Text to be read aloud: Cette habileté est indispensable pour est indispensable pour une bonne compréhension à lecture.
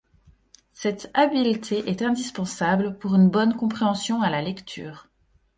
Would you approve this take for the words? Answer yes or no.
no